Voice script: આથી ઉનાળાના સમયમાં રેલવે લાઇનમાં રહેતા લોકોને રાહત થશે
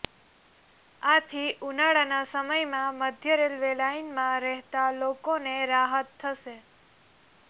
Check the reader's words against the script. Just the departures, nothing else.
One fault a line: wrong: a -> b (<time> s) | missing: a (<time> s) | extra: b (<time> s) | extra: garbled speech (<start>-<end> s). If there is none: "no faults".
extra: મધ્ય (3.0 s)